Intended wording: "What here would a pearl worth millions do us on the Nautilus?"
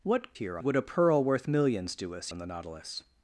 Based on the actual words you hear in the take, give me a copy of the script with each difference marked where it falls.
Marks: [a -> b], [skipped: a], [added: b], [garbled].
"What here would a pearl worth millions do us on the Nautilus?"